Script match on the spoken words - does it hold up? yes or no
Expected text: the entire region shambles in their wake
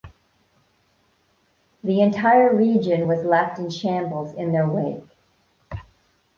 no